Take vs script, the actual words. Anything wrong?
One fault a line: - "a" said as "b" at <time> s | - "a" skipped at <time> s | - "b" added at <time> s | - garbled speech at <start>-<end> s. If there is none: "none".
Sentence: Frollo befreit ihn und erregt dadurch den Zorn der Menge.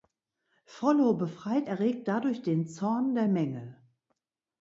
- "ihn und" skipped at 1.7 s